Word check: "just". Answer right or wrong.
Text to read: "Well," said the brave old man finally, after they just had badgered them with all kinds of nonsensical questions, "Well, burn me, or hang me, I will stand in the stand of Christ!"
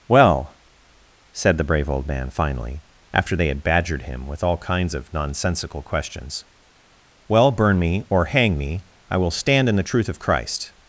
wrong